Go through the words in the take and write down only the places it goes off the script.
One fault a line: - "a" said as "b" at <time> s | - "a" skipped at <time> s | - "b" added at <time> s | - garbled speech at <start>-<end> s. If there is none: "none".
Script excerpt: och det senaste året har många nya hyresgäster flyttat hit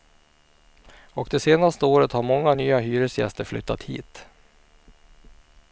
none